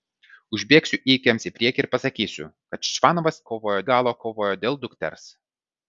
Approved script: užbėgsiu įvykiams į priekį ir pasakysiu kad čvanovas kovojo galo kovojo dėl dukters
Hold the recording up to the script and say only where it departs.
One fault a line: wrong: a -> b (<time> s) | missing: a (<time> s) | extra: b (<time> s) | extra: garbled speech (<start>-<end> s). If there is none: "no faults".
no faults